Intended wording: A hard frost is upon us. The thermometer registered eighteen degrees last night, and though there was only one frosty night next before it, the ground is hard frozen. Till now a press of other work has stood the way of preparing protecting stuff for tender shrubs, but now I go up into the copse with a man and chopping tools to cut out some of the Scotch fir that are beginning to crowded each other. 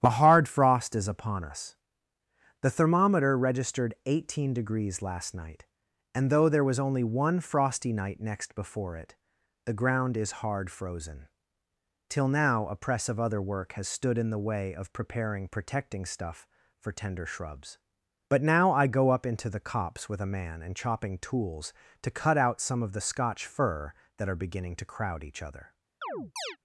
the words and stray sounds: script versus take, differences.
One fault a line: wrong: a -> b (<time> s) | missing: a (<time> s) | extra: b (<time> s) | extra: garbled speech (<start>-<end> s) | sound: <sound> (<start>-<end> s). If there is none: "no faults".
extra: in (14.2 s)
wrong: crowded -> crowd (24.9 s)
sound: chirp (26.0-26.6 s)